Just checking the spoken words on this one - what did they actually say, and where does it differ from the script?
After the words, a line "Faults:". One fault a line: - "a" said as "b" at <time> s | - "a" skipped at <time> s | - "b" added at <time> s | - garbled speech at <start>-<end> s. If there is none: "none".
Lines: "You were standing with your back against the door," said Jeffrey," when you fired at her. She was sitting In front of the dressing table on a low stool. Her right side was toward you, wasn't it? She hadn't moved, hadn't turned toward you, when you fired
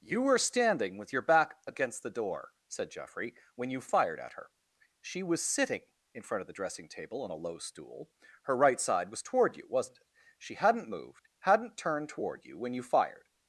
"You were standing with your back against the door," said Jeffrey," when you fired at her. She was sitting In front of the dressing table on a low stool. Her right side was toward you, wasn't it? She hadn't moved, hadn't turned toward you, when you fired
Faults:
none